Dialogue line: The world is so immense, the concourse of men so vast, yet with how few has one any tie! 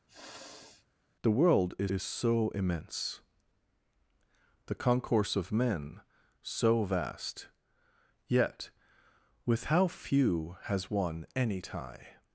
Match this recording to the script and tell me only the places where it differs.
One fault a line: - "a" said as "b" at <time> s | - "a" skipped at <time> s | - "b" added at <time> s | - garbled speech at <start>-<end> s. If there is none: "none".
- "is" added at 1.9 s